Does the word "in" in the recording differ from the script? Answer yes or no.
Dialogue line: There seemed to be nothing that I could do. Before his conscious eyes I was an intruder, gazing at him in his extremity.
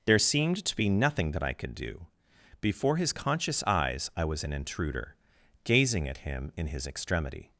no